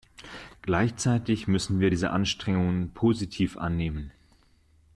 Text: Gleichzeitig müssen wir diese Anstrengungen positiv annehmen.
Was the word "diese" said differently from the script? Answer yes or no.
no